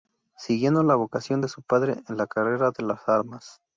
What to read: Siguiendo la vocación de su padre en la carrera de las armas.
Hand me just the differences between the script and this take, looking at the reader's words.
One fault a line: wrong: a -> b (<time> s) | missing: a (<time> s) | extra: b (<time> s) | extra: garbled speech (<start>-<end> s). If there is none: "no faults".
no faults